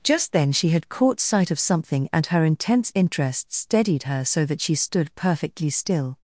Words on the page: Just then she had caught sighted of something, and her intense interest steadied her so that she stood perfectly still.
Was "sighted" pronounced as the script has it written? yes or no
no